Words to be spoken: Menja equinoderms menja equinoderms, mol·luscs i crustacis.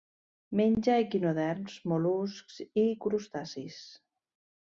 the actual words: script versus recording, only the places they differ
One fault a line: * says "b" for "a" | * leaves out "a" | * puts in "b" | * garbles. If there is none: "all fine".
* leaves out "menja equinoderms"